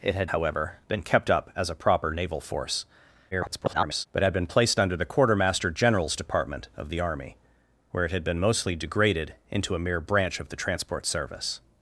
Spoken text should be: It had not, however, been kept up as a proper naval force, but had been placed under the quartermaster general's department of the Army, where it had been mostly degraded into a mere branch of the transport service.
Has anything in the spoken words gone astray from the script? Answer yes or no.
yes